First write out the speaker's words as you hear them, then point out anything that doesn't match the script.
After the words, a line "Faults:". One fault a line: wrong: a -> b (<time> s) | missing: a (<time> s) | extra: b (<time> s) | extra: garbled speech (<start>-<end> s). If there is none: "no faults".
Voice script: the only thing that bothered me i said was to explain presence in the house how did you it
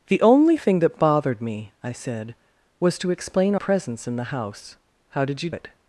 the only thing that bothered me i said was to explain presence in the house how did you it
Faults:
no faults